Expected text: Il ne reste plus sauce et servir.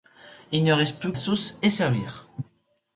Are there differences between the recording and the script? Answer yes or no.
no